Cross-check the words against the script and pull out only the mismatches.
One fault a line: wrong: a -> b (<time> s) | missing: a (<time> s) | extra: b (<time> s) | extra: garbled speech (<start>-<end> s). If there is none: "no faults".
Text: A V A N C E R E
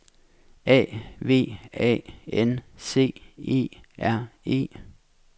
no faults